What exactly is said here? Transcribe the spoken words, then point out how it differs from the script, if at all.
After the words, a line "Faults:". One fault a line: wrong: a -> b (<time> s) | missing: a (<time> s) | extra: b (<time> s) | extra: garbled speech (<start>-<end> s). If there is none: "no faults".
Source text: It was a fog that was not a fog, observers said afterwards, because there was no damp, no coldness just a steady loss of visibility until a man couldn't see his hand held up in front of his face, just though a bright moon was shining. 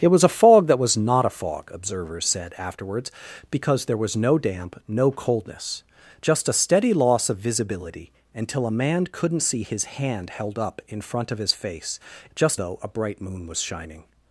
It was a fog that was not a fog, observers said afterwards, because there was no damp, no coldness just a steady loss of visibility until a man couldn't see his hand held up in front of his face, just though a bright moon was shining.
Faults:
no faults